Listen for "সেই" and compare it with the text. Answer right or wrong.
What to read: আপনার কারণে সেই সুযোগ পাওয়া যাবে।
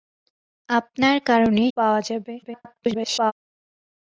wrong